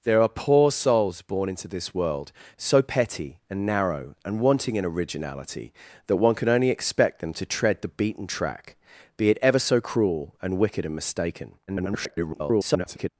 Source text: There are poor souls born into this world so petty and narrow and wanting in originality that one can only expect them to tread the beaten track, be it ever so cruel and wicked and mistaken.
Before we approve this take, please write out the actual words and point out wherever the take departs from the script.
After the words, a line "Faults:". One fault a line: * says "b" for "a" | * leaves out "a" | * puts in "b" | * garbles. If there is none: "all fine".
There are poor souls born into this world so petty and narrow and wanting in originality that one can only expect them to tread the beaten track, be it ever so cruel and wicked and mistaken. [garbled]
Faults:
* garbles